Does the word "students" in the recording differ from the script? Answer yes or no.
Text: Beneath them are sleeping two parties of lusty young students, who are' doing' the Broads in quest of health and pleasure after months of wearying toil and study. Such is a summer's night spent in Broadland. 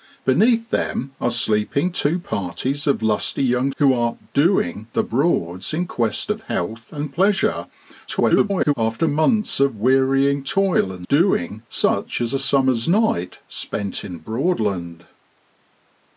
yes